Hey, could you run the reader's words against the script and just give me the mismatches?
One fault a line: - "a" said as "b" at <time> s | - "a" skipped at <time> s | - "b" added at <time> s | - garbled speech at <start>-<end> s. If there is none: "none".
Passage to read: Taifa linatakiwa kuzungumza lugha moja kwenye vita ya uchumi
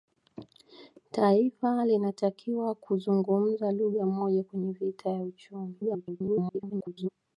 - garbled speech at 5.8-7.1 s